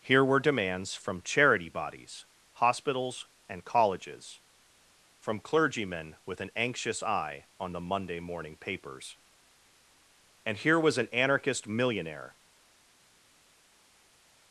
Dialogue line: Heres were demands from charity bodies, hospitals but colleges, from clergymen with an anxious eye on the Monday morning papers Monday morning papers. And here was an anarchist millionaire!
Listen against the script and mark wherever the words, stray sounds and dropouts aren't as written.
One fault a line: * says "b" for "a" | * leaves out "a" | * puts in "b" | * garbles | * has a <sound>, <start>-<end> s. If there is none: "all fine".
* says "Here" for "Heres"
* says "and" for "but"
* leaves out "Monday morning papers"